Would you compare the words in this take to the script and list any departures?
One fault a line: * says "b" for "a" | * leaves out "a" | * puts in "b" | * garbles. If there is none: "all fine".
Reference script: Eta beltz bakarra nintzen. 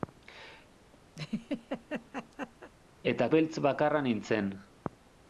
all fine